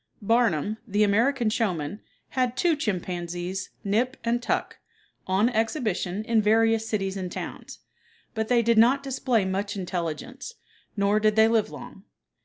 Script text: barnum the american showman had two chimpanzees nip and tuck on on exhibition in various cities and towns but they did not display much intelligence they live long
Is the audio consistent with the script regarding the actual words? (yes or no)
no